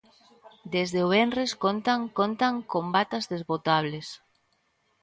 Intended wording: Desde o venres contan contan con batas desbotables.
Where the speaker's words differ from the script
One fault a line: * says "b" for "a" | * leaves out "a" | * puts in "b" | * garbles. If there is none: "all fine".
all fine